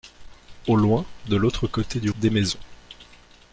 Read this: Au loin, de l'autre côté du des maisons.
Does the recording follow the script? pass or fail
pass